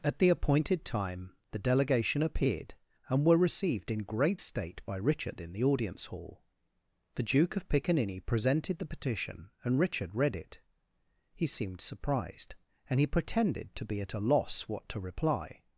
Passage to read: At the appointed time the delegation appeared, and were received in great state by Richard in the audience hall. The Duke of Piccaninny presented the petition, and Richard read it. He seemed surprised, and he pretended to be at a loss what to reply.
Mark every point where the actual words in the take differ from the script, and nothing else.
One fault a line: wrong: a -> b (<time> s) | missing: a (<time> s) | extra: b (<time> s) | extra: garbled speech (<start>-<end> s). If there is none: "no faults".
no faults